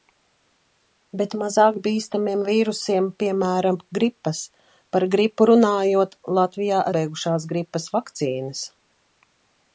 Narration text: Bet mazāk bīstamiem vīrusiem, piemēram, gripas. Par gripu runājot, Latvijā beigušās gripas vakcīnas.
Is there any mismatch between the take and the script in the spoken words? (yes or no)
no